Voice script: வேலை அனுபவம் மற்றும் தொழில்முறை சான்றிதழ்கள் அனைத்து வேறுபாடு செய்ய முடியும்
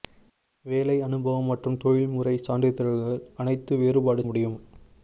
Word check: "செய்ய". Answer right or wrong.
wrong